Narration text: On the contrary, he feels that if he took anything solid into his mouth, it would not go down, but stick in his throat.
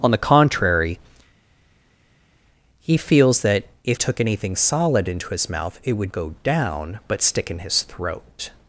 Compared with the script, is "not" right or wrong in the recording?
wrong